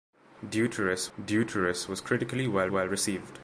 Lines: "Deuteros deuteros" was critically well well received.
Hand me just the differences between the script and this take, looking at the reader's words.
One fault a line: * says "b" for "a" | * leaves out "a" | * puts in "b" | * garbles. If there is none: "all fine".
all fine